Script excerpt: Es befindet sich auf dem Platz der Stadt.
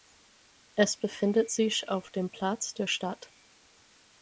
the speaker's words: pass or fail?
pass